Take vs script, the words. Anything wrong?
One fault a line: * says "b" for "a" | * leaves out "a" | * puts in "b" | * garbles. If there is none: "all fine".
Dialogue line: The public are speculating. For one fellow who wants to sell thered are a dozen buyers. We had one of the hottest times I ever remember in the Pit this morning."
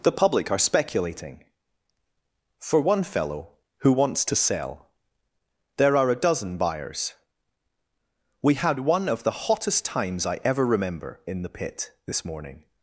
* says "there" for "thered"